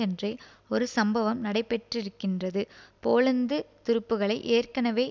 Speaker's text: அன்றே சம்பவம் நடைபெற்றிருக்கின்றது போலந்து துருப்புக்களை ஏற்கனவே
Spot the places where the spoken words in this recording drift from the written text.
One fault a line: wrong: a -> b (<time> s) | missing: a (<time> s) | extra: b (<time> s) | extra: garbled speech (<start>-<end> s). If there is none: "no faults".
extra: ஒரு (0.7 s)